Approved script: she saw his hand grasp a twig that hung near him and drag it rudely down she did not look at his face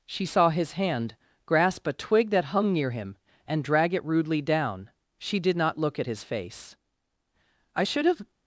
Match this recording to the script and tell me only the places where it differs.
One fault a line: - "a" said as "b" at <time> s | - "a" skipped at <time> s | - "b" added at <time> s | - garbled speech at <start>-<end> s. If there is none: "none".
- "i should have" added at 7.8 s